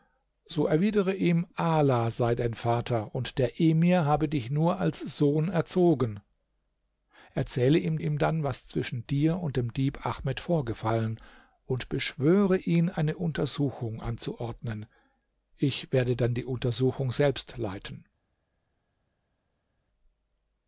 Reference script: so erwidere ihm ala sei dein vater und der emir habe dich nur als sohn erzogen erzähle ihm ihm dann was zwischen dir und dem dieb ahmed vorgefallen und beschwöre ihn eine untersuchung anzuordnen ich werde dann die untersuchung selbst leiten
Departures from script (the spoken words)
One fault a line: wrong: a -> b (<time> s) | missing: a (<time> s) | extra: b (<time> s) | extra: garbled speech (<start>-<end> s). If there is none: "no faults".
no faults